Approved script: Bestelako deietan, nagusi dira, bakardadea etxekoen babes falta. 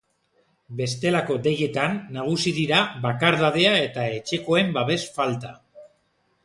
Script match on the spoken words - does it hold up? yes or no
no